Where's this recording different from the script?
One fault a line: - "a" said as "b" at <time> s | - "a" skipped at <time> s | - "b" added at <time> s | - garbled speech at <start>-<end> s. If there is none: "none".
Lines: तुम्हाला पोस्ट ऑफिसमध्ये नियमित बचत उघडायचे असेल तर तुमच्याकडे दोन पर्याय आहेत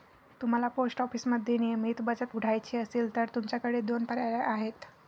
none